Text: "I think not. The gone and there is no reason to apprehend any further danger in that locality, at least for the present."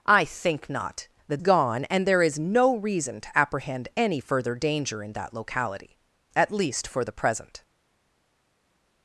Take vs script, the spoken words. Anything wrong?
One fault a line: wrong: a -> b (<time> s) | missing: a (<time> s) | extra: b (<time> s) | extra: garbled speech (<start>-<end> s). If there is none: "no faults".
no faults